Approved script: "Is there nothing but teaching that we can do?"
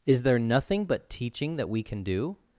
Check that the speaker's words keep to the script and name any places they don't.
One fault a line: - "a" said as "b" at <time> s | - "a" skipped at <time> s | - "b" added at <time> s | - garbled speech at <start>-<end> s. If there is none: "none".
none